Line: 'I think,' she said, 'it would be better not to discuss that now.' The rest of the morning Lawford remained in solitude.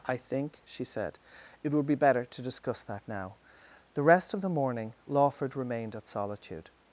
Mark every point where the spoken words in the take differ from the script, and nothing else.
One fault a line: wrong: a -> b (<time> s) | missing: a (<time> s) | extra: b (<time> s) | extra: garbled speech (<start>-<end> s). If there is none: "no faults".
missing: not (2.2 s)
wrong: in -> at (5.9 s)